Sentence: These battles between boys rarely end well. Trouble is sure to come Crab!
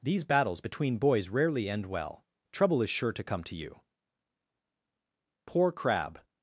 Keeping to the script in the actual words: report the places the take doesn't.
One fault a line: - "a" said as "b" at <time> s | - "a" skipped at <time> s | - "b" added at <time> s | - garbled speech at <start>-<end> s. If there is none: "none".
- "to you Poor" added at 3.4 s